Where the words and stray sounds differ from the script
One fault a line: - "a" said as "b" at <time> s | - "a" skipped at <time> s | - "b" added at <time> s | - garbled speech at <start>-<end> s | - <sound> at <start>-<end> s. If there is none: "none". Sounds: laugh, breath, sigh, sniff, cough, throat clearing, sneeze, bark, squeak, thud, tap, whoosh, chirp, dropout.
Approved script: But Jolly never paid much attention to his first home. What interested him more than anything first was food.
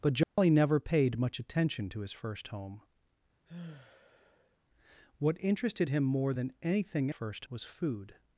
- dropout at 0.2-0.4 s
- sigh at 3.4-4.6 s